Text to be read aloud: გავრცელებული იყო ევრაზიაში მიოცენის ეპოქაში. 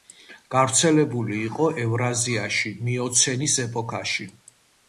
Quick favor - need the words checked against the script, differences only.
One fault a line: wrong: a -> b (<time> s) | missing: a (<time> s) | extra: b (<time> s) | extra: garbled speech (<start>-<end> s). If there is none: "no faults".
no faults